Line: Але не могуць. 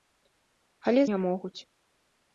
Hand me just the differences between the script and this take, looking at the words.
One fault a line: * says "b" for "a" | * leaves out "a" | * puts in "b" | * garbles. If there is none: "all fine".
all fine